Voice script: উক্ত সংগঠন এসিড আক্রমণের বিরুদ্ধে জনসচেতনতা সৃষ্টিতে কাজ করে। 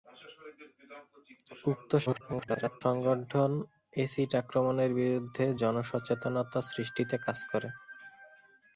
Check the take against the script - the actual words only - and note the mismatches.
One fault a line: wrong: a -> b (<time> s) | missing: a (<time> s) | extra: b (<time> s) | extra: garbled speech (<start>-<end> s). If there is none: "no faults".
extra: garbled speech (2.1-2.8 s)